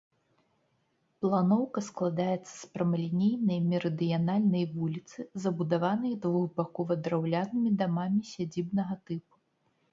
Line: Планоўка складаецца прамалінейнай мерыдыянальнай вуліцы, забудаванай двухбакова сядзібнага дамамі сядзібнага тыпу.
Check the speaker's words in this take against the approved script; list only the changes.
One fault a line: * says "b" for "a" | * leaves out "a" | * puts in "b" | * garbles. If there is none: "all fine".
* puts in "з"
* says "драўлянымі" for "сядзібнага"